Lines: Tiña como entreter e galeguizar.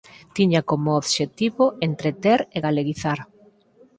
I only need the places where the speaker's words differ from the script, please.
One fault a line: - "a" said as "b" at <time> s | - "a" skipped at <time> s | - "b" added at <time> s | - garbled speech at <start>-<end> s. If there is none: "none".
- "obxectivo" added at 1.0 s